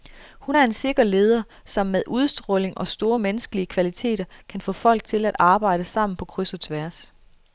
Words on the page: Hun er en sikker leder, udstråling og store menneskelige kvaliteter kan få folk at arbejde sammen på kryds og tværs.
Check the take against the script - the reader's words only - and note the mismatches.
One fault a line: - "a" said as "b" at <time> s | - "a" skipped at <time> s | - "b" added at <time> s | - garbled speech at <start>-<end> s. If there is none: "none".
- "som med" added at 1.7 s
- "til" added at 5.0 s